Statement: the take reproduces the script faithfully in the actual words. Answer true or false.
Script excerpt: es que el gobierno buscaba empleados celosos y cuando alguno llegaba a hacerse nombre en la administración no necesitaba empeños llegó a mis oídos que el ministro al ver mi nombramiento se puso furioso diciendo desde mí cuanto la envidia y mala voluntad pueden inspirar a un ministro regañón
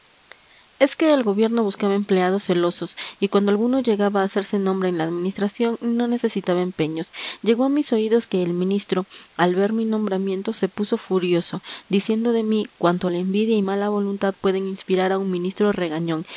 false